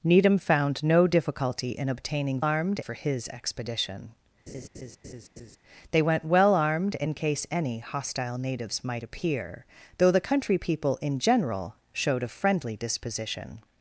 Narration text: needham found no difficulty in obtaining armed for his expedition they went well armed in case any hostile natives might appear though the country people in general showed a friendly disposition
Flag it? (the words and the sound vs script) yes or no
yes